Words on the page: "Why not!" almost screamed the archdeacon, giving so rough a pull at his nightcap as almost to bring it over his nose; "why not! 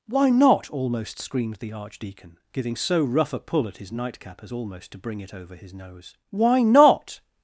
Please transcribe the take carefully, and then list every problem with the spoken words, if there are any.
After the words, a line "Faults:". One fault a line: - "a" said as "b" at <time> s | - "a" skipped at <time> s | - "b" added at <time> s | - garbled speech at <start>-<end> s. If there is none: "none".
"Why not!" almost screamed the archdeacon, giving so rough a pull at his nightcap as almost to bring it over his nose; "why not!
Faults:
none